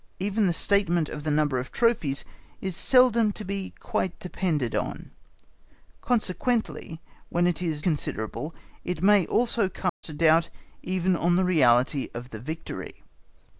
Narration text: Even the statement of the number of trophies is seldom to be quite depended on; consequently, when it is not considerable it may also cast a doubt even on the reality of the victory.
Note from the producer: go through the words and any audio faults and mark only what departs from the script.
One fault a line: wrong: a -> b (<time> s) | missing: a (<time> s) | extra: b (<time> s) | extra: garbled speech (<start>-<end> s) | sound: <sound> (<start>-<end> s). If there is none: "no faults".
missing: not (7.8 s)
sound: dropout (9.9-10.0 s)